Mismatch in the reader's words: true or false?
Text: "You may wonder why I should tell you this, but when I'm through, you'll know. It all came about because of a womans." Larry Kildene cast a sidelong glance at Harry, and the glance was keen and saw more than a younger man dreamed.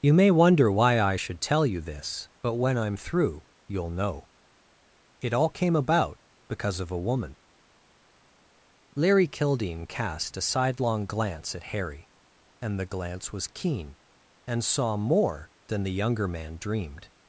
true